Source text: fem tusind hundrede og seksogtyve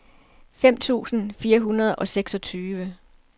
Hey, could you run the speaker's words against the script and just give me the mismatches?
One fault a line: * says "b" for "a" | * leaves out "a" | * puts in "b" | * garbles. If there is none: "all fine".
* puts in "fire"